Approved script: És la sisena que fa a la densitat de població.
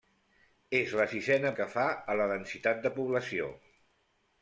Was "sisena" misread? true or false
false